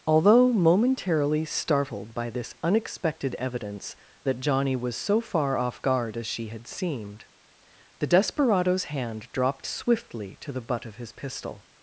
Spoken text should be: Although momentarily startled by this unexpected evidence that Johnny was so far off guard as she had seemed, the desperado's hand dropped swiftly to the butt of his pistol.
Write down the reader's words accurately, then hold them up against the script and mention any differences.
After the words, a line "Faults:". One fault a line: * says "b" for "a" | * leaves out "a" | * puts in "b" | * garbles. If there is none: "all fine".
Although momentarily startled by this unexpected evidence that Johnny was so far off guard as she had seemed, the desperado's hand dropped swiftly to the butt of his pistol.
Faults:
all fine